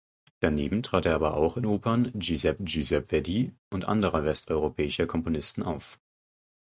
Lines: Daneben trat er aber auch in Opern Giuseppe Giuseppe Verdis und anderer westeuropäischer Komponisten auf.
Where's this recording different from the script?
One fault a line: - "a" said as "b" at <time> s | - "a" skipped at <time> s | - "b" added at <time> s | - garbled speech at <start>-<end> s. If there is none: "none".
none